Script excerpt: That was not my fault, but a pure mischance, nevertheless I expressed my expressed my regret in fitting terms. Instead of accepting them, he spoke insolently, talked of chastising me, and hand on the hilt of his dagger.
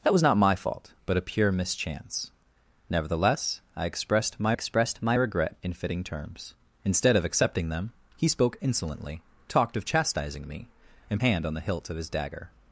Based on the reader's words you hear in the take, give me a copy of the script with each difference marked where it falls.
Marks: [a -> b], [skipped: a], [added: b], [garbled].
That was not my fault, but a pure mischance, nevertheless I expressed my expressed my regret in fitting terms. Instead of accepting them, he spoke insolently, talked of chastising me, and hand on the hilt of his dagger.